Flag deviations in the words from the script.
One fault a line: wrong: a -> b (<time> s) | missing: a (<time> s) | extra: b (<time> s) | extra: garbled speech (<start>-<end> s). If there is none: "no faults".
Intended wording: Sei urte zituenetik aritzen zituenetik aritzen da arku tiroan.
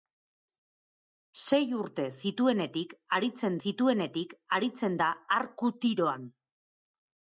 no faults